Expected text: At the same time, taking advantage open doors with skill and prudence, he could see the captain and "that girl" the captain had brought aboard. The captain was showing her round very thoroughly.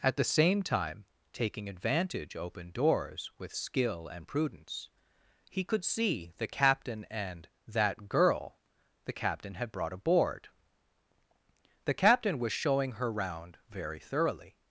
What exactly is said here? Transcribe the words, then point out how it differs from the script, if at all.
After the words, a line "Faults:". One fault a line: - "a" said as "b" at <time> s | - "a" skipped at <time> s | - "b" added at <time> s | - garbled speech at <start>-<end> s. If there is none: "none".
At the same time, taking advantage open doors with skill and prudence, he could see the captain and "that girl" the captain had brought aboard. The captain was showing her round very thoroughly.
Faults:
none